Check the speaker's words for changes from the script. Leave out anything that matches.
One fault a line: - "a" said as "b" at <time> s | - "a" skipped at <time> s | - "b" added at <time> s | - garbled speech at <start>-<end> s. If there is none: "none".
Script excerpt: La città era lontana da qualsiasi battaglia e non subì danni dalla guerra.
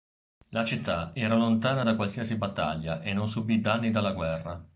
none